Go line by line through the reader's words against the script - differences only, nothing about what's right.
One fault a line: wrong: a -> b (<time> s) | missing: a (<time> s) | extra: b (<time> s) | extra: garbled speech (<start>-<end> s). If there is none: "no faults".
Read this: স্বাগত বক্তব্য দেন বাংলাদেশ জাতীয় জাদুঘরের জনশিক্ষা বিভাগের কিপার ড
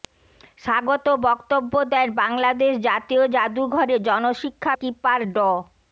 missing: বিভাগের (4.7 s)